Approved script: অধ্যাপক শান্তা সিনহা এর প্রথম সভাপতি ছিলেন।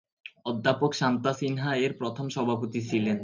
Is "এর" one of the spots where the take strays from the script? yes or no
no